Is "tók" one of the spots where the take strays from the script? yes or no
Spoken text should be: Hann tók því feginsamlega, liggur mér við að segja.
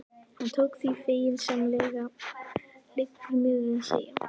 no